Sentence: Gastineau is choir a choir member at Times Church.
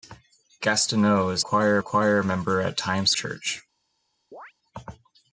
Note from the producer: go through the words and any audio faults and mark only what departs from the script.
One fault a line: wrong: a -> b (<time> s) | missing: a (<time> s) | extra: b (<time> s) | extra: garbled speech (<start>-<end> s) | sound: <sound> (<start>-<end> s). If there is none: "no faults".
sound: chirp (4.3-4.5 s)